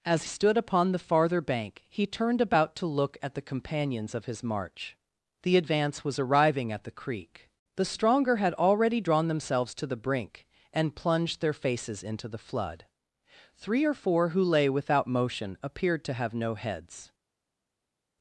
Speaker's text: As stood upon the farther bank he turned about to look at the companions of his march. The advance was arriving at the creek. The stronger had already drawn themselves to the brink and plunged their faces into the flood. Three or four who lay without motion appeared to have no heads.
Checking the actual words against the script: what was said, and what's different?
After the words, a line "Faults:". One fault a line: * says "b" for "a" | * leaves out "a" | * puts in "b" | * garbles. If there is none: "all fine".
As stood upon the farther bank he turned about to look at the companions of his march. The advance was arriving at the creek. The stronger had already drawn themselves to the brink and plunged their faces into the flood. Three or four who lay without motion appeared to have no heads.
Faults:
all fine